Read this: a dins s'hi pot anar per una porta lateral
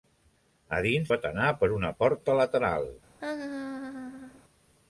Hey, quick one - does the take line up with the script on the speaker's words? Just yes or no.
no